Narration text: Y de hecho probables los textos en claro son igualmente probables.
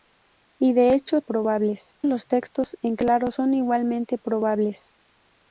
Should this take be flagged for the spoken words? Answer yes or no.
no